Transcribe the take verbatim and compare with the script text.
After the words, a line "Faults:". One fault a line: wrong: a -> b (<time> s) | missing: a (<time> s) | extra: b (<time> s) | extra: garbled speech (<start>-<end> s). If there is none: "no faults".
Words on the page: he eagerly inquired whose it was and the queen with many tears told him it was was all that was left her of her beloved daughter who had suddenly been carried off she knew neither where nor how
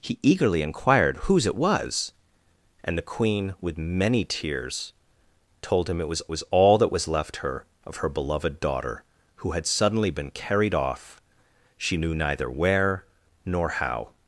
he eagerly inquired whose it was and the queen with many tears told him it was was all that was left her of her beloved daughter who had suddenly been carried off she knew neither where nor how
Faults:
no faults